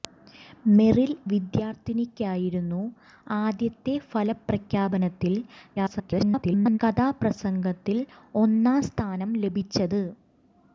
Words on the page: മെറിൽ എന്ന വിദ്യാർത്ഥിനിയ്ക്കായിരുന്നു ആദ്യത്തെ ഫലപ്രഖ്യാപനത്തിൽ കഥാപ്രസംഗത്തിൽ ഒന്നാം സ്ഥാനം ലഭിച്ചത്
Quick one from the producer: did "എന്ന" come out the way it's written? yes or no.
no